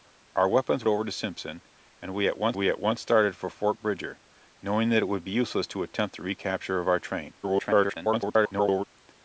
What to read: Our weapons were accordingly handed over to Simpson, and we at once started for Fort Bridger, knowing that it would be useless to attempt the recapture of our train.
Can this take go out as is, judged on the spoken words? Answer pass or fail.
fail